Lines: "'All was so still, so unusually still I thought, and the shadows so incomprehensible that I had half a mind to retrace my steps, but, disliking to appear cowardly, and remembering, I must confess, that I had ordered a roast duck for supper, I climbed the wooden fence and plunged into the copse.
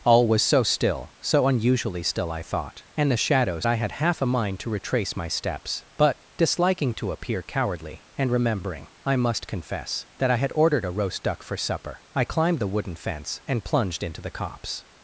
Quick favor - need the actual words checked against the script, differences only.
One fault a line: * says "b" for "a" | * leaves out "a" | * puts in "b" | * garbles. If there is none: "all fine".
* leaves out "so incomprehensible that"